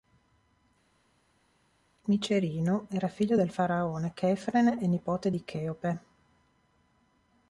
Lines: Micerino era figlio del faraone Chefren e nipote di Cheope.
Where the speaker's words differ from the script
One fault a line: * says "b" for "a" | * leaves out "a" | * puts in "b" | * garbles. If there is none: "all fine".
all fine